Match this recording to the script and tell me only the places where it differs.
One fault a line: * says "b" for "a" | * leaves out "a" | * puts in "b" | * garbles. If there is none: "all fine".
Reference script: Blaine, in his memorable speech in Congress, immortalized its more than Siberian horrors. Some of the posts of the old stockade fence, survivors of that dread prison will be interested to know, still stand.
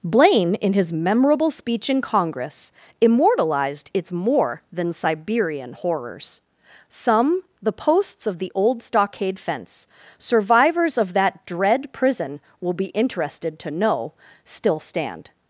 * leaves out "of"